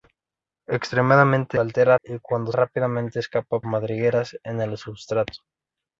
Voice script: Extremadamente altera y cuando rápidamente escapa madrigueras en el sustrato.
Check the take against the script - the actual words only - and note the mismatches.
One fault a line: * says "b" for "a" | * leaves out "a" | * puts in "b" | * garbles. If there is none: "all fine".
all fine